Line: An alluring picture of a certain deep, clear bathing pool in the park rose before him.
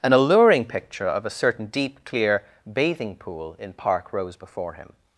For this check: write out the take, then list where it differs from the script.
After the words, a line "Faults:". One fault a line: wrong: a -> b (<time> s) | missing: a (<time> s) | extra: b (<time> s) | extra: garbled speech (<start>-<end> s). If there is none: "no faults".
An alluring picture of a certain deep, clear bathing pool in park rose before him.
Faults:
missing: the (3.7 s)